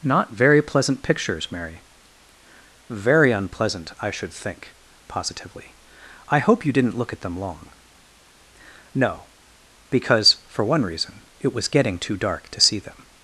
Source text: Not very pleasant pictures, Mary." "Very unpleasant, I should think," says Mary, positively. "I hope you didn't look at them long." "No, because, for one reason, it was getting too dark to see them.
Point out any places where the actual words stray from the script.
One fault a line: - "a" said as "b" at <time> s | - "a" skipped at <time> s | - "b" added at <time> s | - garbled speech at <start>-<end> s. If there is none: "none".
- "says Mary" skipped at 4.8 s